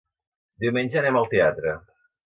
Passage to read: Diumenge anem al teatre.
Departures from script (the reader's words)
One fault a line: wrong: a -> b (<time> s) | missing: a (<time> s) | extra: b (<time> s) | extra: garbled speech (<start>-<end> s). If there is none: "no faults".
no faults